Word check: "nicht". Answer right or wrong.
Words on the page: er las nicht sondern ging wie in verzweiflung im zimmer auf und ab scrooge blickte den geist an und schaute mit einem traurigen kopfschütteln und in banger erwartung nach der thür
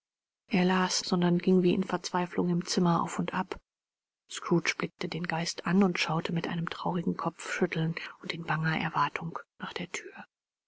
wrong